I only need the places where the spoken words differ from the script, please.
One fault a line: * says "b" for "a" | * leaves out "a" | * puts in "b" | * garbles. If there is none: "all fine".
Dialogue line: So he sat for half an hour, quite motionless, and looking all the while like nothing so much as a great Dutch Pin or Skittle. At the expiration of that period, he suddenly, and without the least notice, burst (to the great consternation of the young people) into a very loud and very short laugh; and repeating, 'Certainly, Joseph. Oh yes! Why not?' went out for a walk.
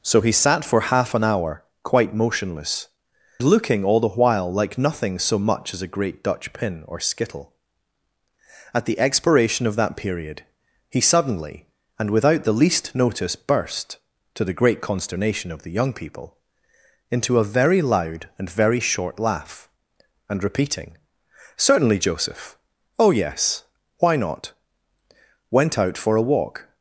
* leaves out "and"